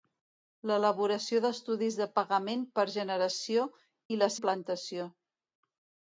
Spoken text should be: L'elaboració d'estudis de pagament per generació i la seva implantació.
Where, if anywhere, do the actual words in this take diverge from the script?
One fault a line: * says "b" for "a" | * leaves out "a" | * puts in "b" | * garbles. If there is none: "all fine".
* leaves out "seva"